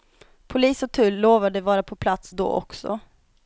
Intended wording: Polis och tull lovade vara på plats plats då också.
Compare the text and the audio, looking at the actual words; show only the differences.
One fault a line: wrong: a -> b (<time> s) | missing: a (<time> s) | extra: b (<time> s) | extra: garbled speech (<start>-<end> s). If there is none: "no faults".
missing: plats (2.3 s)